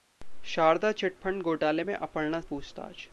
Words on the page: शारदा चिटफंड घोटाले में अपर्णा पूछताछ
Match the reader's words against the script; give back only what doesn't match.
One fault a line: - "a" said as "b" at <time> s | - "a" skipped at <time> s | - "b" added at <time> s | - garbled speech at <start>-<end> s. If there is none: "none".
none